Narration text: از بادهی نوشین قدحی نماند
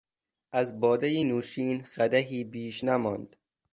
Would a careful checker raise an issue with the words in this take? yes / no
yes